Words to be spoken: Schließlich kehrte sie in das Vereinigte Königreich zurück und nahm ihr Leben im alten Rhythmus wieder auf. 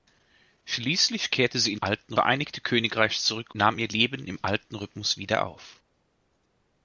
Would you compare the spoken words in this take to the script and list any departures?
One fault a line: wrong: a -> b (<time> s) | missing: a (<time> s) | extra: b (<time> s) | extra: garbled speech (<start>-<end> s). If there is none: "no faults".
wrong: das -> alten (1.8 s)
missing: und (3.5 s)